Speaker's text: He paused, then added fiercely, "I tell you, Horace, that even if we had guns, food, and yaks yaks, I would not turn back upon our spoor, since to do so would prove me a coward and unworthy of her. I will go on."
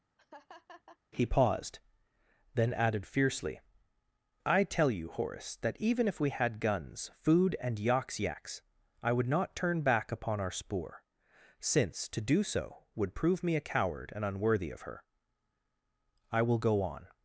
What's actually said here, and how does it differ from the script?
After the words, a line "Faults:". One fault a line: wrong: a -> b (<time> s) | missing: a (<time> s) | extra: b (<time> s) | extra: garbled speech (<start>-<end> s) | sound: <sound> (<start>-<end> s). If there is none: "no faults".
He paused, then added fiercely, "I tell you, Horace, that even if we had guns, food, and yaks yaks, I would not turn back upon our spoor, since to do so would prove me a coward and unworthy of her. I will go on."
Faults:
sound: laugh (0.2-1.0 s)